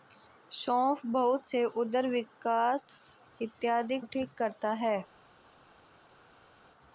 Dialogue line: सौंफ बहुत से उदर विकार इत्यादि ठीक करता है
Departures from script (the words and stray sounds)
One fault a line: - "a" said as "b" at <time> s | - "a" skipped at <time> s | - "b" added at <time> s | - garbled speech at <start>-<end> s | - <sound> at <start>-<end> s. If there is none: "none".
none